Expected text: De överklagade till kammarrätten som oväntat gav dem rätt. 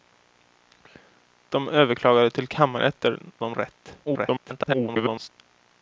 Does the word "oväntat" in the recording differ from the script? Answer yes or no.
yes